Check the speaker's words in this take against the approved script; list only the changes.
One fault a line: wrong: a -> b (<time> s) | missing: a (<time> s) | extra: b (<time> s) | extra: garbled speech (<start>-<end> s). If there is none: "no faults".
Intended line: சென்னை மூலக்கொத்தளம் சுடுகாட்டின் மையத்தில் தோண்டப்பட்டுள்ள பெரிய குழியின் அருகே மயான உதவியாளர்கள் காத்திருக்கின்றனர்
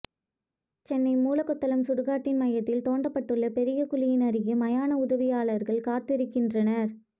no faults